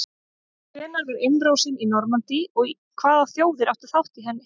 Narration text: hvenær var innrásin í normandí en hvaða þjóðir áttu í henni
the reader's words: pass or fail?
fail